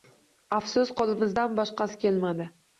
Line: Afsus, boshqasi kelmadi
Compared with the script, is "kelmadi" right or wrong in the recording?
right